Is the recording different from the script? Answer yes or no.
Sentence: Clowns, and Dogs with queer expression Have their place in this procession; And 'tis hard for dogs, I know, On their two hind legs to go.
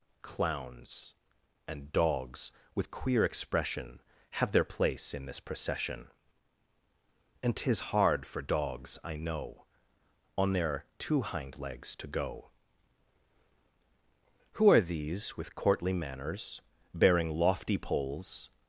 yes